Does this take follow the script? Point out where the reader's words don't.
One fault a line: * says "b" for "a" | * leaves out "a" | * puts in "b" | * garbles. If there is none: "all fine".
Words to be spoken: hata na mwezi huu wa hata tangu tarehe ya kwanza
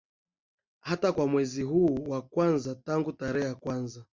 * says "kwa" for "na"
* says "kwanza" for "hata"